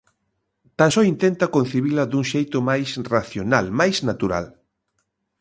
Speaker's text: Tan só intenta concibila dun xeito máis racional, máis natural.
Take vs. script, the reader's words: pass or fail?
pass